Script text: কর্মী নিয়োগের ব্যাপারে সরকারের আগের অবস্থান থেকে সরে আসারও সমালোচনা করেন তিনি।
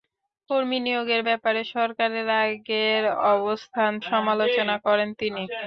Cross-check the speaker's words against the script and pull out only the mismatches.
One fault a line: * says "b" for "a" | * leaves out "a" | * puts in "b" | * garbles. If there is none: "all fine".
* leaves out "থেকে সরে আসারও"